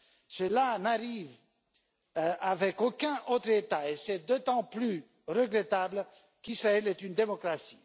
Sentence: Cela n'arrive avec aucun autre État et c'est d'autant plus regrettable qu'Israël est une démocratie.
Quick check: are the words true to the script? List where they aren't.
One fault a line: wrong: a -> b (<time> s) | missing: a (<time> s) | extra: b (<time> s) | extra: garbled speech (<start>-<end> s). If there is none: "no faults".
no faults